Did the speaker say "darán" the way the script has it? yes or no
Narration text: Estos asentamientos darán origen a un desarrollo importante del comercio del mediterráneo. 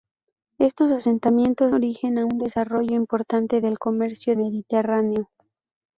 no